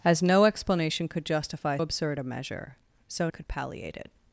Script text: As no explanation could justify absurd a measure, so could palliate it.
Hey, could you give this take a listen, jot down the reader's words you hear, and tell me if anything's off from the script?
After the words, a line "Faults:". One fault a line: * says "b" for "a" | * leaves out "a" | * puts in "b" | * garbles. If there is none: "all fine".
As no explanation could justify absurd a measure, so could palliate it.
Faults:
all fine